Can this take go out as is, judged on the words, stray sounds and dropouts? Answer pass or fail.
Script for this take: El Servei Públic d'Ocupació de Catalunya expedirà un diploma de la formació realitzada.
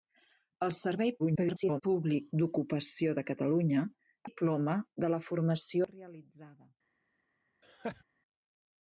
fail